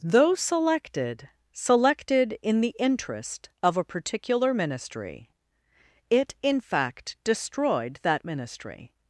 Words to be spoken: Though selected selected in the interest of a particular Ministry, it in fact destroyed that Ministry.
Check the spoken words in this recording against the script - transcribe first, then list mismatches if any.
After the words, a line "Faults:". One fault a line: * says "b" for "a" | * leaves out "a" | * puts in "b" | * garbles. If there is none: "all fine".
Though selected selected in the interest of a particular Ministry, it in fact destroyed that Ministry.
Faults:
all fine